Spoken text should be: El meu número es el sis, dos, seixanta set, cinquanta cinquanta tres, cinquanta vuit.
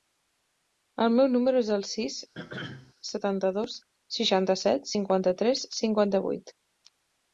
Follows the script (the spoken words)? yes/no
no